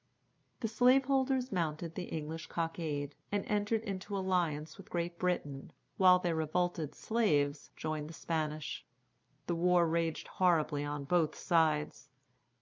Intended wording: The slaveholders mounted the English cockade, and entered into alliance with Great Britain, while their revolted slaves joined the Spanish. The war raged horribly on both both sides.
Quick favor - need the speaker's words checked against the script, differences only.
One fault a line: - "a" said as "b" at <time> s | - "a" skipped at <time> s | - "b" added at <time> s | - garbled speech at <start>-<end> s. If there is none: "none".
- "both" skipped at 11.3 s